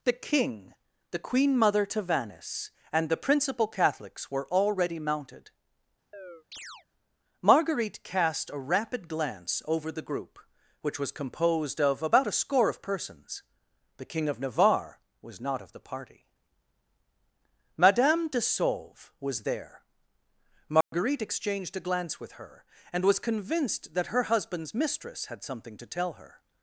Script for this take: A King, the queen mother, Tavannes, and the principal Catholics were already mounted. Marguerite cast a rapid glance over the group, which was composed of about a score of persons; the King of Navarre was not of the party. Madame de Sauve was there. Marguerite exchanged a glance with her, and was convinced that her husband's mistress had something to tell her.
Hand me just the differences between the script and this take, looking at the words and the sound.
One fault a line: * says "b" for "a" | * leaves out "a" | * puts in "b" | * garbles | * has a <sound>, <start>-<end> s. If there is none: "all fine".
* says "The" for "A"
* has a chirp, 6.1-6.9 s
* has a dropout, 20.8-20.9 s